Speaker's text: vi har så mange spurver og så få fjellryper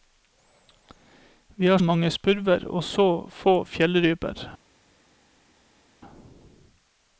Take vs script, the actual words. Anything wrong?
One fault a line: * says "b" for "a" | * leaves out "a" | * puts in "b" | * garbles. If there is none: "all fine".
* leaves out "så"